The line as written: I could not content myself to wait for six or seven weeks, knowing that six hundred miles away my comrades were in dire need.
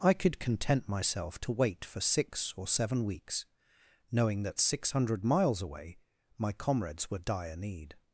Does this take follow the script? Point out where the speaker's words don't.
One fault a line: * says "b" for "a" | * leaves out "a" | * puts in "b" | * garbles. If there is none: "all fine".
* leaves out "not"
* leaves out "in"